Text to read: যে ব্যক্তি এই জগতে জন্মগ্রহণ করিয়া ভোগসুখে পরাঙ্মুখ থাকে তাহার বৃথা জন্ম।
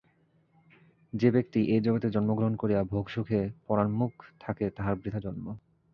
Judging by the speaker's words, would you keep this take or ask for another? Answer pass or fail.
pass